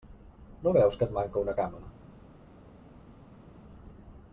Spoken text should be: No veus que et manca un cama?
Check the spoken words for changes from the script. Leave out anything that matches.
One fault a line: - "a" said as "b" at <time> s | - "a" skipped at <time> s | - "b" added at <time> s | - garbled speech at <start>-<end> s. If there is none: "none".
- "un" said as "una" at 1.4 s